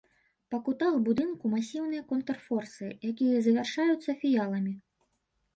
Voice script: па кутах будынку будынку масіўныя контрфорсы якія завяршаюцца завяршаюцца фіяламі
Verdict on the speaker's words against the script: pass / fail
fail